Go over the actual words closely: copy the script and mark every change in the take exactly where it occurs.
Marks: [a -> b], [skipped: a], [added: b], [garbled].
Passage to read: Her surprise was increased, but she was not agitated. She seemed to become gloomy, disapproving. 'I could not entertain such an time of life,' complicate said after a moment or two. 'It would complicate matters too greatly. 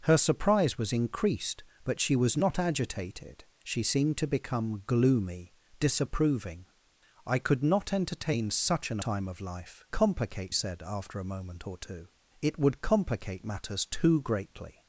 Her surprise was increased, but she was not agitated. She seemed to become gloomy, disapproving. 'I could not entertain such an time of life,' complicate said after a moment or two. 'It would complicate matters too greatly.